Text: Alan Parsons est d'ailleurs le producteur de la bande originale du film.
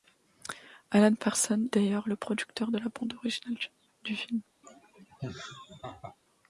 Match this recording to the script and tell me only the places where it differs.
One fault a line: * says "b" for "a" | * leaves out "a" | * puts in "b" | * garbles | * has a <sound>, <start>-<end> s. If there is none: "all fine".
* leaves out "est"
* has a laugh, 4.6-6.2 s